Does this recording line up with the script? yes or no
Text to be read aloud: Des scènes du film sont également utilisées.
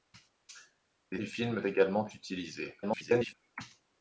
no